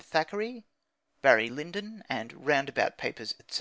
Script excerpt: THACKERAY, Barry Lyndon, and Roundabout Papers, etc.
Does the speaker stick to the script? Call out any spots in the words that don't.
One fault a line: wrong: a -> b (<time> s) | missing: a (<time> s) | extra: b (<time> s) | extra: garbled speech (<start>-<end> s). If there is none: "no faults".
no faults